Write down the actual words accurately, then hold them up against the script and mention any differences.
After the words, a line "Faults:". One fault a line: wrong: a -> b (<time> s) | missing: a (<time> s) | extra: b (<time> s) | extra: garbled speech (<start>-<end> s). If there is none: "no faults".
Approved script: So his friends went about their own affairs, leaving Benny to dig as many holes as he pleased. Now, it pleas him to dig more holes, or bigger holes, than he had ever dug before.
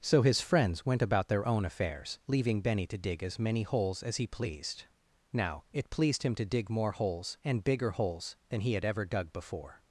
So his friends went about their own affairs, leaving Benny to dig as many holes as he pleased. Now, it pleased him to dig more holes, and bigger holes, than he had ever dug before.
Faults:
wrong: pleas -> pleased (5.9 s)
wrong: or -> and (7.4 s)